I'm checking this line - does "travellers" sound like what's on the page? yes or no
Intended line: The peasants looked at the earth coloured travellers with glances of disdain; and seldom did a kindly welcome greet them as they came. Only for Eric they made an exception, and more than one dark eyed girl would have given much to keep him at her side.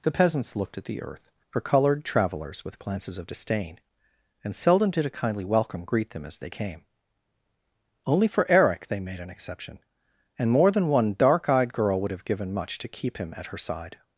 no